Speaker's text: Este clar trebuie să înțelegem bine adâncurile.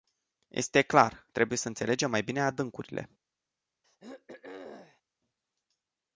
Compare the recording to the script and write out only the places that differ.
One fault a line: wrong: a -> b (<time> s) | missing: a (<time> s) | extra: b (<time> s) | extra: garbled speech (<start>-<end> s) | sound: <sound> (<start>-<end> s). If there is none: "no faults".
extra: mai (2.1 s)
sound: throat clearing (3.8-5.0 s)